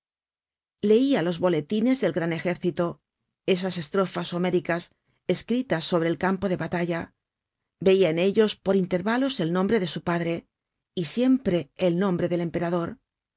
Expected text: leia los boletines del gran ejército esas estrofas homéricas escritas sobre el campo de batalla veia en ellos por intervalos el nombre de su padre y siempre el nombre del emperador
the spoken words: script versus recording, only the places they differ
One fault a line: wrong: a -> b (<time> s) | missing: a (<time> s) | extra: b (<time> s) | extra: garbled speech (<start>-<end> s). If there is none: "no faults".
no faults